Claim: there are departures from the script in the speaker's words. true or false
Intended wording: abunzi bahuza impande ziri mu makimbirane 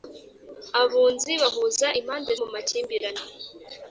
true